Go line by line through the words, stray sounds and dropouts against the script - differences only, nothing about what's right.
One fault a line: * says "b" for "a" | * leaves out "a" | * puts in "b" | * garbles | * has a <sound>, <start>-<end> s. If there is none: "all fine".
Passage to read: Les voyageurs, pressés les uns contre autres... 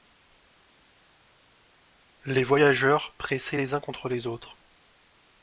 * puts in "les"